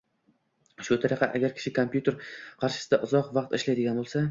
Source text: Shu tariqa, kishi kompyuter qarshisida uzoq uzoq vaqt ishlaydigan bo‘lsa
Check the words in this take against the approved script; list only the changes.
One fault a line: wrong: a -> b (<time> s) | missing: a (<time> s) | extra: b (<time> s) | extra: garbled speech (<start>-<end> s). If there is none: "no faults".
extra: agar (1.4 s)
missing: uzoq (3.4 s)